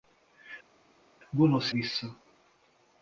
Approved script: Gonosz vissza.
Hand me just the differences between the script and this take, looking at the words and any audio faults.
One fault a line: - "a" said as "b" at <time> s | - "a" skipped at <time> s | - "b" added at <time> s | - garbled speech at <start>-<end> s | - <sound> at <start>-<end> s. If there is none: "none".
none